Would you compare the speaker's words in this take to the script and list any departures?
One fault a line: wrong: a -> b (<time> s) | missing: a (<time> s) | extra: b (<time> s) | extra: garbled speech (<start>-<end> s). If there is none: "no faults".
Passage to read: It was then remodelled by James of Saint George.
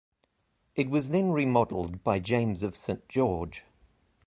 no faults